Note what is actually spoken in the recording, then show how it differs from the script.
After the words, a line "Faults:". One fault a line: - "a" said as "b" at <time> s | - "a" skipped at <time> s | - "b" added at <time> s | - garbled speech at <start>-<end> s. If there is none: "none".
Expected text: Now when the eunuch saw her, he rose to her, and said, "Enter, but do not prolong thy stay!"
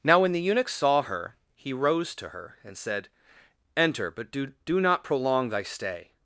Now when the eunuch saw her, he rose to her, and said, "Enter, but do do not prolong thy stay!"
Faults:
- "do" added at 4.7 s